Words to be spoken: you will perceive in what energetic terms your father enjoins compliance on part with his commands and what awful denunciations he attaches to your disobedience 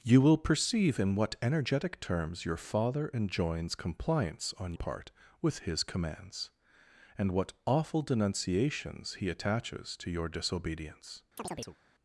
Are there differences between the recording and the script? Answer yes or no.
no